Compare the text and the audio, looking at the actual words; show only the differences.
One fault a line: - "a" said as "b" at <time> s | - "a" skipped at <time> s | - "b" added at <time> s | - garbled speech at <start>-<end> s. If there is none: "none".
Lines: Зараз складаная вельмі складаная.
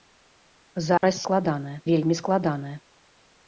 none